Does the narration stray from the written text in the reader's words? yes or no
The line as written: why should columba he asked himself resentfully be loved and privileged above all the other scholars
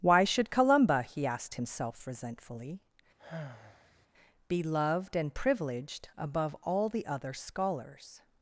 no